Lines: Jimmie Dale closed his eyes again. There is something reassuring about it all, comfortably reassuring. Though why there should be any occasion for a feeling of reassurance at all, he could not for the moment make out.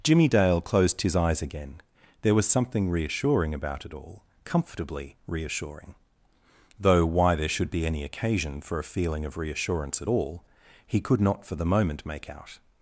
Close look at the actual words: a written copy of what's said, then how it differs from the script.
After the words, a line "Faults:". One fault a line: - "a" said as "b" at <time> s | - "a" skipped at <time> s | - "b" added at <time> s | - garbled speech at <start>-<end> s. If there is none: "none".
Jimmie Dale closed his eyes again. There was something reassuring about it all, comfortably reassuring. Though why there should be any occasion for a feeling of reassurance at all, he could not for the moment make out.
Faults:
- "is" said as "was" at 2.3 s